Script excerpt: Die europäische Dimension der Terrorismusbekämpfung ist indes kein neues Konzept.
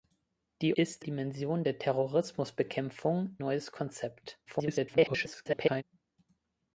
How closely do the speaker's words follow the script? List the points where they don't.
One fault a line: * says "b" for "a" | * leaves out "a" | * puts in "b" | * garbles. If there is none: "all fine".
* says "ist" for "europäische"
* leaves out "ist indes kein"
* garbles